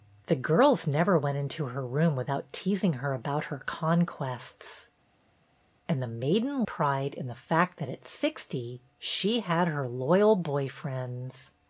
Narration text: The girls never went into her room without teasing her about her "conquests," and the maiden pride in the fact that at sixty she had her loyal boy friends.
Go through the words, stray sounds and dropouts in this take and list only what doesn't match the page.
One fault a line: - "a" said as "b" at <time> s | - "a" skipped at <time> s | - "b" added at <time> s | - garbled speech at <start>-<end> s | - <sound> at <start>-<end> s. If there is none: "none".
none